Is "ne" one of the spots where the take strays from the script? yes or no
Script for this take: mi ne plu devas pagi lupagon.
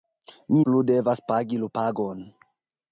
yes